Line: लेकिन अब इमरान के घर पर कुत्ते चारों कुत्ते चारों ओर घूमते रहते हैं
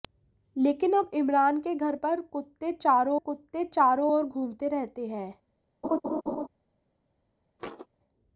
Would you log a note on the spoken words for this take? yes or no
no